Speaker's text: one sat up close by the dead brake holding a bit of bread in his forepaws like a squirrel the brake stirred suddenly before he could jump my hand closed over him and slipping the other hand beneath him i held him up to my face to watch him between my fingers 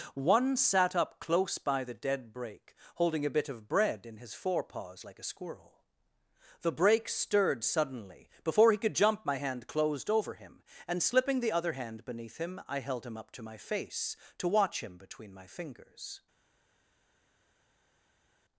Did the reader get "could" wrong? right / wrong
right